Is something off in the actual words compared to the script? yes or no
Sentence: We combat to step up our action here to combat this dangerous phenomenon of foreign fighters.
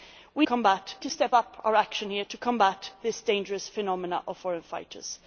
no